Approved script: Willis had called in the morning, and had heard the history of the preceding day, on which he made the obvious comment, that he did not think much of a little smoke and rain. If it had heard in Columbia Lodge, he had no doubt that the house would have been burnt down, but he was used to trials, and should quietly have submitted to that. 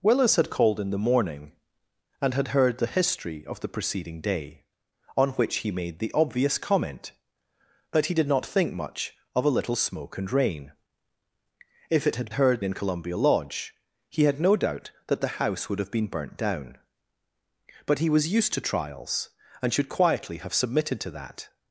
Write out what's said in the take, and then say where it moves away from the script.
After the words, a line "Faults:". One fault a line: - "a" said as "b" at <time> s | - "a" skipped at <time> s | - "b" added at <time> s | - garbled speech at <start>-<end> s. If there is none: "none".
Willis had called in the morning, and had heard the history of the preceding day, on which he made the obvious comment, that he did not think much of a little smoke and rain. If it had heard in Columbia Lodge, he had no doubt that the house would have been burnt down, but he was used to trials, and should quietly have submitted to that.
Faults:
none